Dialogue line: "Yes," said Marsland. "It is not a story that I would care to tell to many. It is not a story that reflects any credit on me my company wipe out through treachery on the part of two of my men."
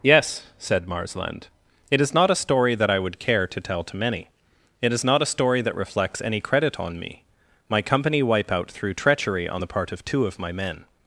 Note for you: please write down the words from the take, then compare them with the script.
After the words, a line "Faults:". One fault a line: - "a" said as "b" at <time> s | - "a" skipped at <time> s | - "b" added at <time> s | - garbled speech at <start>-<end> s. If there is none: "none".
"Yes," said Marsland. "It is not a story that I would care to tell to many. It is not a story that reflects any credit on me my company wipe out through treachery on the part of two of my men."
Faults:
none